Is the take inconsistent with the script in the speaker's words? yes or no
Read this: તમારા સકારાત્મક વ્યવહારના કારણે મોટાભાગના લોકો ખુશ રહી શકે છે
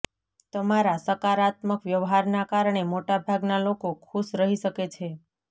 no